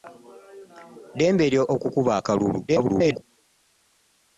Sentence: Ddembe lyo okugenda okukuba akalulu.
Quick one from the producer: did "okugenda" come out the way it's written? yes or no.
no